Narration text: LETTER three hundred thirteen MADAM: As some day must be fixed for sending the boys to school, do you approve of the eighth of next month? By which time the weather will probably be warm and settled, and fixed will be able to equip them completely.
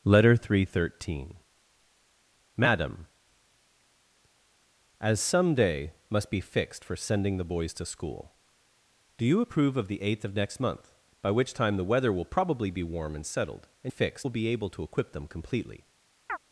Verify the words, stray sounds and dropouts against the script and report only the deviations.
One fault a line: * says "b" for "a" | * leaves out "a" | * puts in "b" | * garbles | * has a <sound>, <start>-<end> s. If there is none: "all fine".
* has a chirp, 16.3-16.4 s